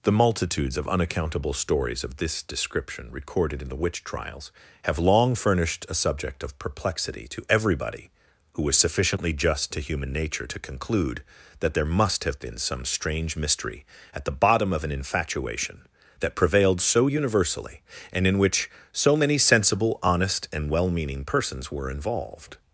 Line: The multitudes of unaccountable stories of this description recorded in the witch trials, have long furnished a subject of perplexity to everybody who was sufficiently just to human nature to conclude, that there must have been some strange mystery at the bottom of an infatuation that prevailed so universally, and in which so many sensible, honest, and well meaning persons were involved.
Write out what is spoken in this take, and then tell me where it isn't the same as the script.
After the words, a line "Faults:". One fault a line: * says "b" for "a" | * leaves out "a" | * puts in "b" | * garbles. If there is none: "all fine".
The multitudes of unaccountable stories of this description recorded in the witch trials, have long furnished a subject of perplexity to everybody who was sufficiently just to human nature to conclude, that there must have been some strange mystery at the bottom of an infatuation that prevailed so universally, and in which so many sensible, honest, and well meaning persons were involved.
Faults:
all fine